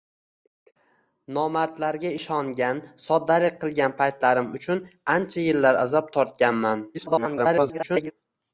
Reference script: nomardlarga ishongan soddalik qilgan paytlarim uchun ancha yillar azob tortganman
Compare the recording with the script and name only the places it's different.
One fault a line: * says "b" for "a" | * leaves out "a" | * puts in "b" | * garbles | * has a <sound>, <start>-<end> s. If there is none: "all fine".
* garbles